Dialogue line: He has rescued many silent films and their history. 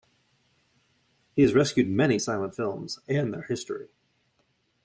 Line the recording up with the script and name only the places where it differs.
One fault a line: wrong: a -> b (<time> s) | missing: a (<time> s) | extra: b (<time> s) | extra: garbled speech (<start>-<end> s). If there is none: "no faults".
no faults